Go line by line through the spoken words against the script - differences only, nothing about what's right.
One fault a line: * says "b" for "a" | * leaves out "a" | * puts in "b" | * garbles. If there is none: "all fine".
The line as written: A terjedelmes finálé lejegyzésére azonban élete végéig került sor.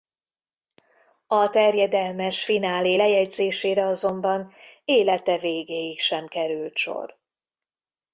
* puts in "sem"